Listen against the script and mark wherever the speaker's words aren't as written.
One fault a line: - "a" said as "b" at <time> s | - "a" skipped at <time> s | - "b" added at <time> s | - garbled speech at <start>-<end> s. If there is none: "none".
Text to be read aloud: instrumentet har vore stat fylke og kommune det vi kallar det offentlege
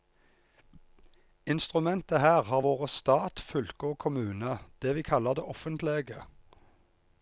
- "her" added at 2.2 s